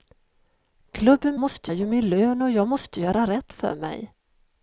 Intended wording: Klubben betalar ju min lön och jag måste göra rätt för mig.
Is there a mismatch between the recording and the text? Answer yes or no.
yes